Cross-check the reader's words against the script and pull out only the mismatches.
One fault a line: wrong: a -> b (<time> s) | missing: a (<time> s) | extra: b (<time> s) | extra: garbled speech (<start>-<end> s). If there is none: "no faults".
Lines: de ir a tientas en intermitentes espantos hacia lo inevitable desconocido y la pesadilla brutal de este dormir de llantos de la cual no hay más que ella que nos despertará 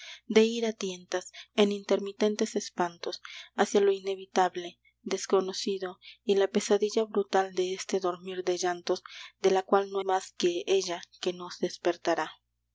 missing: hay (10.0 s)